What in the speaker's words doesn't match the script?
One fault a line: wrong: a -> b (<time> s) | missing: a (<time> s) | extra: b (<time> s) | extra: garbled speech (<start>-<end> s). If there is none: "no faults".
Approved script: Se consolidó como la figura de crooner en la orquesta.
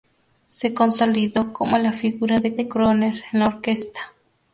extra: de (2.5 s)